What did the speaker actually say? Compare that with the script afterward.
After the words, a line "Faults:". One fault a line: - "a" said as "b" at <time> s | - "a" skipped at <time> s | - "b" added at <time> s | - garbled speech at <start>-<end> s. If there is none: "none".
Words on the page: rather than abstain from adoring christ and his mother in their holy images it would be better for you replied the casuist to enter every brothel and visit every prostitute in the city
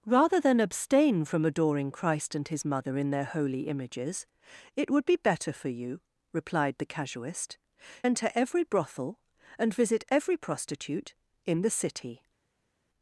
rather than abstain from adoring christ and his mother in their holy images it would be better for you replied the casuist enter every brothel and visit every prostitute in the city
Faults:
- "to" skipped at 7.6 s